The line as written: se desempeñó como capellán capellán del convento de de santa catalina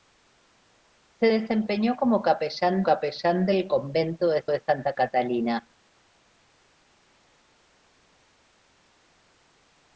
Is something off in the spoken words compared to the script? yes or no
no